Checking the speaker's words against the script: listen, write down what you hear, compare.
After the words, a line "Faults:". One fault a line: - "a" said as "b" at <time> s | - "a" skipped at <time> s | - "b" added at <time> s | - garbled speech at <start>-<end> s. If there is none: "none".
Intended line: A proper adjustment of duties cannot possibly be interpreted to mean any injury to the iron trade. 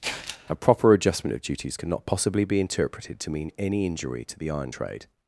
A proper adjustment of duties cannot possibly be interpreted to mean any injury to the iron trade.
Faults:
none